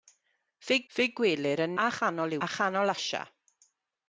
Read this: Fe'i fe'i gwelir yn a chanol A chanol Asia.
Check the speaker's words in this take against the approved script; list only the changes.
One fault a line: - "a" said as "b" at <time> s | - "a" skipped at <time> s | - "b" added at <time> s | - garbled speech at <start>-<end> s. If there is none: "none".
none